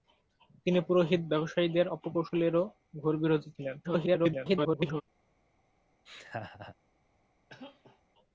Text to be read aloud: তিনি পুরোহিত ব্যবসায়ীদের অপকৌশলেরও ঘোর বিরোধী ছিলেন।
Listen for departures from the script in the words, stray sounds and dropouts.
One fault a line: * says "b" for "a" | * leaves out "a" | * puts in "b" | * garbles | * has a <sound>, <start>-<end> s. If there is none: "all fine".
* garbles
* has a laugh, 6.1-6.8 s
* has a cough, 7.5-8.0 s